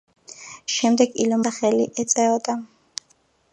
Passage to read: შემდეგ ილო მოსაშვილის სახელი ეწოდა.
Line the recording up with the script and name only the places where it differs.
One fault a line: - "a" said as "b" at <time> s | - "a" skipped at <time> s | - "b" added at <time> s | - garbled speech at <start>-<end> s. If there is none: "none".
- "მოსაშვილის" skipped at 1.4 s